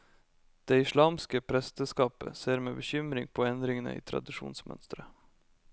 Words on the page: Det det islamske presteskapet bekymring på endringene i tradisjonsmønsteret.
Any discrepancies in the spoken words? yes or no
yes